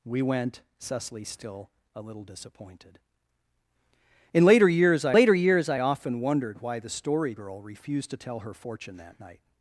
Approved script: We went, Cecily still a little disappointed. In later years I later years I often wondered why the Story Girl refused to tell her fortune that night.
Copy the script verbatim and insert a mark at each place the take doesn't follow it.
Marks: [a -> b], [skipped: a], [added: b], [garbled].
We went, Cecily still a little disappointed. In later years I later years I often wondered why the Story Girl refused to tell her fortune that night.